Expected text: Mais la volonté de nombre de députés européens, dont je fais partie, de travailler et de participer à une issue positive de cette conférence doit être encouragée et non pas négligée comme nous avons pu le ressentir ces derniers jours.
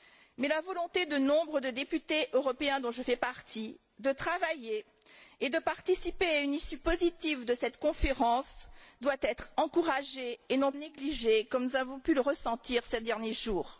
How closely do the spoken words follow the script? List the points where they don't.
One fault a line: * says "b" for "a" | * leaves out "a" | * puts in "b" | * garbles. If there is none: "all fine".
* leaves out "pas"